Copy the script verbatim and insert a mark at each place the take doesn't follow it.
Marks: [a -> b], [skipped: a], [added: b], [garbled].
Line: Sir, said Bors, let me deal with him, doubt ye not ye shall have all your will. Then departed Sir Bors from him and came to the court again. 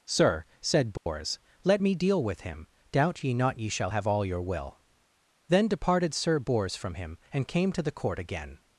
Sir, said Bors, let me deal with him, doubt ye not ye shall have all your will. Then departed Sir Bors from him and came to the court again.